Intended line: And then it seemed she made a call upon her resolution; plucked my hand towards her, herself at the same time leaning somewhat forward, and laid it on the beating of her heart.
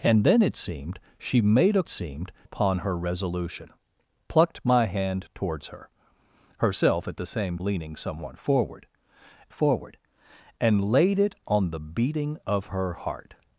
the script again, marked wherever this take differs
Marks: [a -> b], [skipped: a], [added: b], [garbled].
And then it seemed she made a [call -> seemed] upon her resolution; plucked my hand towards her, herself at the same [skipped: time] leaning somewhat forward, [added: forward] and laid it on the beating of her heart.